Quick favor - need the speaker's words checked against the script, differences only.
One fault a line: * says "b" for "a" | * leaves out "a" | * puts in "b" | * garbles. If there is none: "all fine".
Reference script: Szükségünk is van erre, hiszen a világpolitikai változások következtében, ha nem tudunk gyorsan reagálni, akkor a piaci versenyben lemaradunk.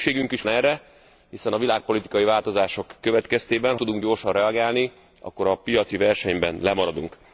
* leaves out "van"
* leaves out "nem"